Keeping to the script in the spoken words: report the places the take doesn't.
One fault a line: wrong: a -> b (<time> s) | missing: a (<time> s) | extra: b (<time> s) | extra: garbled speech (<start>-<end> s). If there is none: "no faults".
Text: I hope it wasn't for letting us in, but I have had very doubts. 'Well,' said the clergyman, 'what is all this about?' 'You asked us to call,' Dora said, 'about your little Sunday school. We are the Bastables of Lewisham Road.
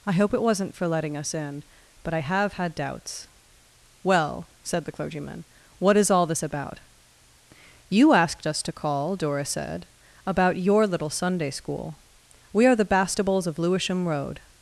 missing: very (2.7 s)